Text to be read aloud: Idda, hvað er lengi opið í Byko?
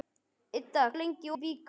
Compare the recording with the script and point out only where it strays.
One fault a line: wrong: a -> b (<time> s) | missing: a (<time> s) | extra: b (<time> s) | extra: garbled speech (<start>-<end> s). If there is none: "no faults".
missing: hvað (0.8 s)
missing: opið (1.3 s)